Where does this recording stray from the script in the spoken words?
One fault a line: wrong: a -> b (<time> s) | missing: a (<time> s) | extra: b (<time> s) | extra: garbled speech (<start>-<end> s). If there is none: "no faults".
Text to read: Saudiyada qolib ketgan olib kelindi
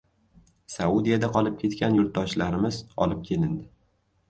extra: yurtdoshlarimiz (2.0 s)